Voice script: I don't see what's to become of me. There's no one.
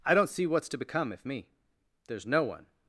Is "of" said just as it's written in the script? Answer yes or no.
no